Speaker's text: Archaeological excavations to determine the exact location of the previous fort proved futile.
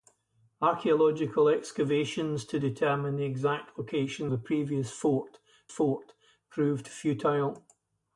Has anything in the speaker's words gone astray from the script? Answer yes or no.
yes